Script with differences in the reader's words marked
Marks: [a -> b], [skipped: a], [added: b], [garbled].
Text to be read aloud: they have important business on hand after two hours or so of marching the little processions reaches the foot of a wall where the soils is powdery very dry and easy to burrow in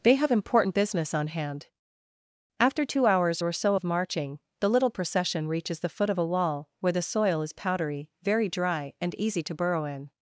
they have important business on hand after two hours or so of marching the little [processions -> procession] reaches the foot of a wall where the [soils -> soil] is powdery very dry and easy to burrow in